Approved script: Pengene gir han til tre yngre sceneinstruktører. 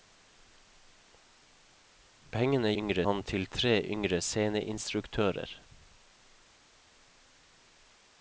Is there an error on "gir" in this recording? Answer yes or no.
yes